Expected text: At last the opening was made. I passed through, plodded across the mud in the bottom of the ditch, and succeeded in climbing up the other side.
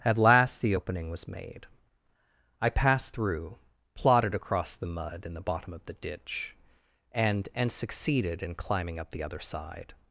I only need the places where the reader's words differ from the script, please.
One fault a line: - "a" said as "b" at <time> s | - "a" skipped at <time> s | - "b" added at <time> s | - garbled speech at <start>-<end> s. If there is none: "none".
- "and" added at 7.5 s